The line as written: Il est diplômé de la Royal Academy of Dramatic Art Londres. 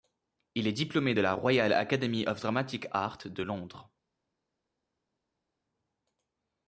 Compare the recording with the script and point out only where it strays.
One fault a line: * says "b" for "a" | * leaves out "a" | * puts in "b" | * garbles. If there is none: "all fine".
* puts in "de"